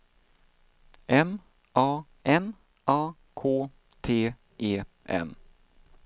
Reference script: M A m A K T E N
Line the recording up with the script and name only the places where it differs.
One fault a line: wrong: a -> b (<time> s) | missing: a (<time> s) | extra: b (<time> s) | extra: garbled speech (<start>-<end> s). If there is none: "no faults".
no faults